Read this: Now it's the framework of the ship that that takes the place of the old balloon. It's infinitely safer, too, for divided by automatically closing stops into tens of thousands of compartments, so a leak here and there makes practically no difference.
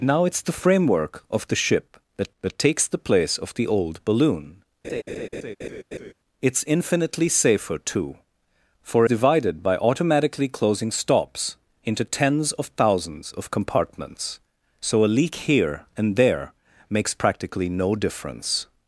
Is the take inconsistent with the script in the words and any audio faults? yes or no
yes